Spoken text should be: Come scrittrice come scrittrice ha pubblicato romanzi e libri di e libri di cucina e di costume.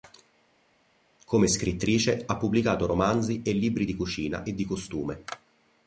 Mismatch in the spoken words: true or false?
true